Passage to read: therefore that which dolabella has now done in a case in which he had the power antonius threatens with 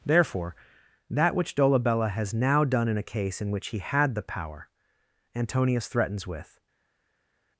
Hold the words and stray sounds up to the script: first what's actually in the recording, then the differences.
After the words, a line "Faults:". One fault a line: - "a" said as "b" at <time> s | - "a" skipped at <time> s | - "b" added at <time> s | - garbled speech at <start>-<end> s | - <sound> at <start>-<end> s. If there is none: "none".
therefore that which dolabella has now done in a case in which he had the power antonius threatens with
Faults:
none